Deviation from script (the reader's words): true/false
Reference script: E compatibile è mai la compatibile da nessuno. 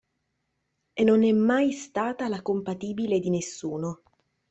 true